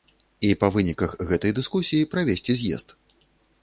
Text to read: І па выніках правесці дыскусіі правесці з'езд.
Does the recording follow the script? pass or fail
fail